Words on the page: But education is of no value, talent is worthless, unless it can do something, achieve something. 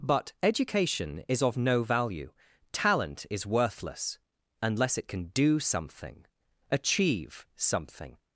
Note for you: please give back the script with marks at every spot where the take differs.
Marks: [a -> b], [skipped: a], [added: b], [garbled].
But education is of no value, talent is worthless, unless it can do something, achieve something.